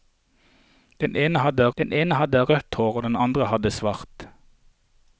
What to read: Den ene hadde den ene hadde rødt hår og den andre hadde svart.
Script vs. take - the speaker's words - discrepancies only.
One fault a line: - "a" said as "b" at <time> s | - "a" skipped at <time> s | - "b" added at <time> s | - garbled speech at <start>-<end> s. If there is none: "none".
none